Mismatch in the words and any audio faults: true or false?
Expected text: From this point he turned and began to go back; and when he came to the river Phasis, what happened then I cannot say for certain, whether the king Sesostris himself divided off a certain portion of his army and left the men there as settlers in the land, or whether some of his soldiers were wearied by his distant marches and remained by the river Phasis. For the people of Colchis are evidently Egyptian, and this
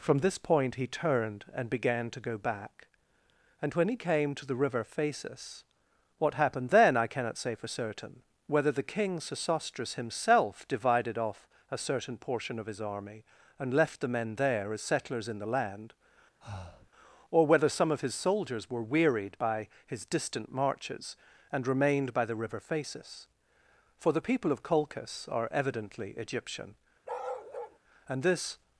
true